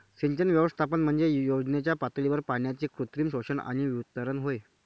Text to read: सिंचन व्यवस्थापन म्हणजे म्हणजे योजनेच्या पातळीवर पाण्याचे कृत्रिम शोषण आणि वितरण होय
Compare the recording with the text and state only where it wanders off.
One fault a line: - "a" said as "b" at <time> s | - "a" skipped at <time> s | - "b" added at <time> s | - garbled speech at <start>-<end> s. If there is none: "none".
- "म्हणजे" skipped at 1.3 s